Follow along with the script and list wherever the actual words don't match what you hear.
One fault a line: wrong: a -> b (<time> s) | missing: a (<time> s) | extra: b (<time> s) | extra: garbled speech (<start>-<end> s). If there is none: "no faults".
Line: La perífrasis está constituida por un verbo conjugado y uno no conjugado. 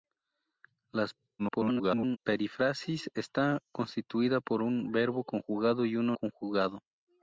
extra: garbled speech (1.4-2.2 s)
missing: no (6.2 s)